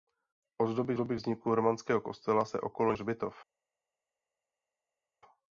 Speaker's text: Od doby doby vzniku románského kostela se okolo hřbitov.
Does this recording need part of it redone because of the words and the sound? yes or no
no